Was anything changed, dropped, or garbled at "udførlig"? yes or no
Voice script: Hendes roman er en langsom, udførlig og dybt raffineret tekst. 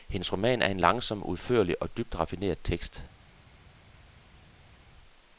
no